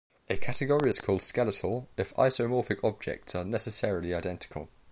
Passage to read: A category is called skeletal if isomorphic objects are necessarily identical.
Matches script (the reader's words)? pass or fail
pass